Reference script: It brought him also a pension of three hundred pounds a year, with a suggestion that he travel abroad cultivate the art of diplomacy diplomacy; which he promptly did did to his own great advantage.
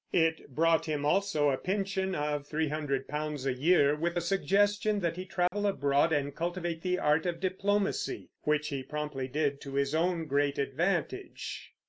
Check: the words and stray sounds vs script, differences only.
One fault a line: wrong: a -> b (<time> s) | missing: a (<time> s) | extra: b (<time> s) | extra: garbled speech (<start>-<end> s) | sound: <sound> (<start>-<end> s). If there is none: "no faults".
sound: dropout (5.5-5.5 s)
extra: and (6.1 s)
missing: diplomacy (8.3 s)
missing: did (9.6 s)